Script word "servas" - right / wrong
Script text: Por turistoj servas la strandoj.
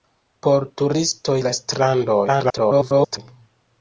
wrong